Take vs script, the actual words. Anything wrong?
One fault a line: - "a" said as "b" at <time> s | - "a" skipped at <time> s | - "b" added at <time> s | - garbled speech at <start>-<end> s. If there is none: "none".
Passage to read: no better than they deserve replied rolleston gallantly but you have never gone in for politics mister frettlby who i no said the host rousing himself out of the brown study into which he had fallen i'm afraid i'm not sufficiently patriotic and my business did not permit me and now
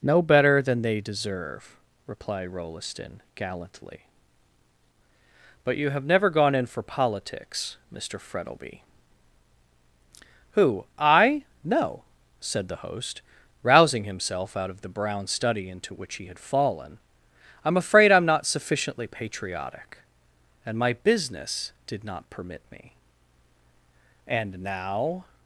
none